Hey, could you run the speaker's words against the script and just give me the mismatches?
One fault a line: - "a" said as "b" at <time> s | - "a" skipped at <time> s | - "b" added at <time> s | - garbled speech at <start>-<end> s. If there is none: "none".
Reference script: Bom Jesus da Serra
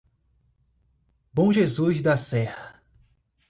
none